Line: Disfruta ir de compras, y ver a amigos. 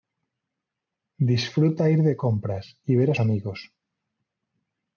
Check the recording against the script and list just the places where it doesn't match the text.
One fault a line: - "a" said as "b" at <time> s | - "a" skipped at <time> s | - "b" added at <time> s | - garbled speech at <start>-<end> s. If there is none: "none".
none